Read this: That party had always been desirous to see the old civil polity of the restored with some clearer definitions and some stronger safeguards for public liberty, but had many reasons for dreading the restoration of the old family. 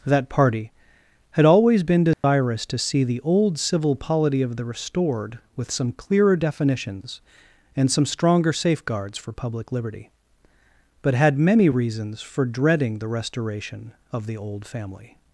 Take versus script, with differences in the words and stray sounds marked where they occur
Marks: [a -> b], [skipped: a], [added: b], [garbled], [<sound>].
That party had always been desirous [dropout] to see the old civil polity of the restored with some clearer definitions and some stronger safeguards for public liberty, but had many reasons for dreading the restoration of the old family.